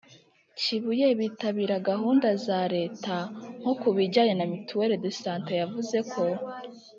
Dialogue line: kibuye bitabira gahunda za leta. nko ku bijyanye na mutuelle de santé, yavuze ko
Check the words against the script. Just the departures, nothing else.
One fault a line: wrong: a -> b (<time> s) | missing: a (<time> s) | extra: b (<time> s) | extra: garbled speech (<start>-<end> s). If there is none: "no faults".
no faults